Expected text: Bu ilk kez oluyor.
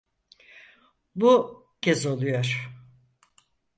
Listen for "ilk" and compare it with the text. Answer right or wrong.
wrong